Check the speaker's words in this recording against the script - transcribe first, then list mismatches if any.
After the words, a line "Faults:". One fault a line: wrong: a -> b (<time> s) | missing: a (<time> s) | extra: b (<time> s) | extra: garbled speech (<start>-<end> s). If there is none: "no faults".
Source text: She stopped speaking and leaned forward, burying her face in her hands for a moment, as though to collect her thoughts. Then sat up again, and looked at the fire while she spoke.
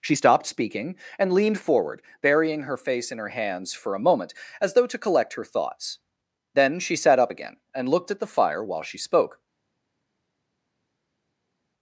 She stopped speaking and leaned forward, burying her face in her hands for a moment, as though to collect her thoughts. Then she sat up again, and looked at the fire while she spoke.
Faults:
extra: she (6.8 s)